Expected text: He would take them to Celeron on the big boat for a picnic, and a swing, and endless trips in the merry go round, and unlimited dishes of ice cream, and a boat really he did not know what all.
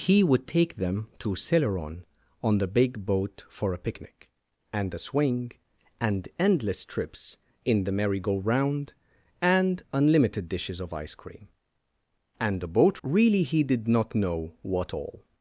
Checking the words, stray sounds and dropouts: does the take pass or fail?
pass